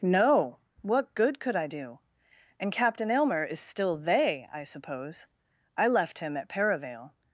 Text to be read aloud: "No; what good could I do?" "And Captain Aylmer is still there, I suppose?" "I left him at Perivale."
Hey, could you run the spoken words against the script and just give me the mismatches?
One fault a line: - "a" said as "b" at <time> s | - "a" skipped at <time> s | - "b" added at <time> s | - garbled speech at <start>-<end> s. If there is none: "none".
- "there" said as "they" at 4.0 s